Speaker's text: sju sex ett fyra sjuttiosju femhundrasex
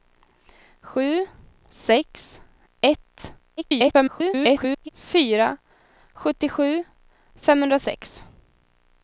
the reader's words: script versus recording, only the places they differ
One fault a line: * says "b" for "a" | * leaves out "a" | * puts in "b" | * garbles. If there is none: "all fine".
* garbles